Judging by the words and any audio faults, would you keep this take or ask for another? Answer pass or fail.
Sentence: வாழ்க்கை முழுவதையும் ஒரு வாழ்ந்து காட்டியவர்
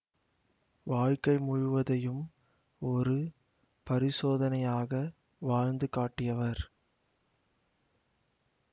fail